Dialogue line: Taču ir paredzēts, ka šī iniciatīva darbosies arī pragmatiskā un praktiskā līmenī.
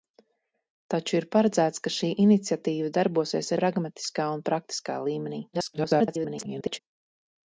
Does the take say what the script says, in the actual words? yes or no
no